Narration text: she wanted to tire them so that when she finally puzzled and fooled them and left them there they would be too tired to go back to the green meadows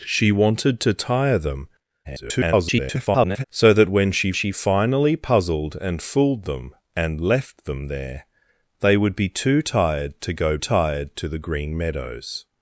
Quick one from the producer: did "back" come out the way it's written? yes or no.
no